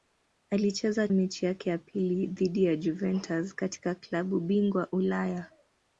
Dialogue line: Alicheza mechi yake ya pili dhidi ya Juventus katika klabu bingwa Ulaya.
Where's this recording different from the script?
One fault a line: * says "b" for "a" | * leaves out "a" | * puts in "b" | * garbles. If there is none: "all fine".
all fine